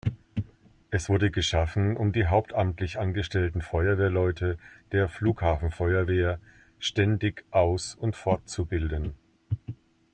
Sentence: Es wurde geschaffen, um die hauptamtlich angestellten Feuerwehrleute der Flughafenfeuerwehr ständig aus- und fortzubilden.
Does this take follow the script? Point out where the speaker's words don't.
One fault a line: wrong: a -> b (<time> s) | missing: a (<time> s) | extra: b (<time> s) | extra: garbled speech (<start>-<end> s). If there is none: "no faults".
no faults